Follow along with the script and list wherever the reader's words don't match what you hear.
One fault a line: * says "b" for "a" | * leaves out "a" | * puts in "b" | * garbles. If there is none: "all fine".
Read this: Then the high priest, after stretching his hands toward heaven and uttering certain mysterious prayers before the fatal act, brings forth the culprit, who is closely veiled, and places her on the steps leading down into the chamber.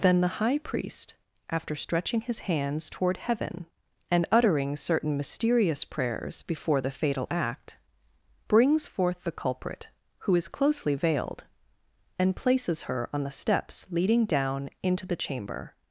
all fine